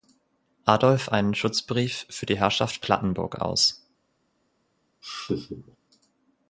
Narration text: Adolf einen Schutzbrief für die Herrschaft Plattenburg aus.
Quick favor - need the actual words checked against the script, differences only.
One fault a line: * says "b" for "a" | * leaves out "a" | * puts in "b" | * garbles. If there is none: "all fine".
all fine